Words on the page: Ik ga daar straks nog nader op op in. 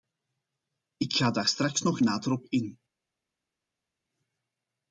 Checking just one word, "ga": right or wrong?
right